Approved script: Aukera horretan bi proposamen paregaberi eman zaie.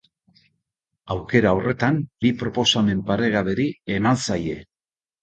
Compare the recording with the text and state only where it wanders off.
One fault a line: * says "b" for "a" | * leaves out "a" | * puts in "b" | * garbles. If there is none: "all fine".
all fine